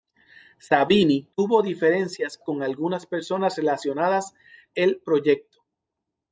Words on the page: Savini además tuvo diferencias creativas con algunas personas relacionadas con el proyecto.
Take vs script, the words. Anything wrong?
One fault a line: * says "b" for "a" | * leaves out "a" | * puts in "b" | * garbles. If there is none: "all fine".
* leaves out "además"
* leaves out "creativas"
* leaves out "con"